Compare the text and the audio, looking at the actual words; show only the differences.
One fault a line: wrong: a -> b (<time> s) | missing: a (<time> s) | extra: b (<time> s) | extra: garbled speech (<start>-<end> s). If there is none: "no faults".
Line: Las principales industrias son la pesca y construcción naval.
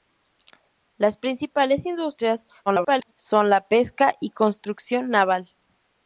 extra: garbled speech (2.7-3.1 s)